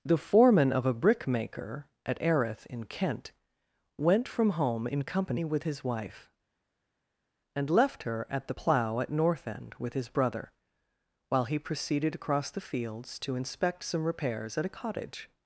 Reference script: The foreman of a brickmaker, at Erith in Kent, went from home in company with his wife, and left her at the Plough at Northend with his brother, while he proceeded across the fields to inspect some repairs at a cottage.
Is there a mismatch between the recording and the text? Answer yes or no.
no